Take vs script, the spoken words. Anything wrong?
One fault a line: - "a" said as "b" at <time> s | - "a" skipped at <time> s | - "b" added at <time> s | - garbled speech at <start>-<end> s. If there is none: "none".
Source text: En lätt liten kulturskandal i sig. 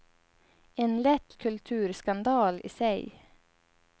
- "liten" skipped at 1.4 s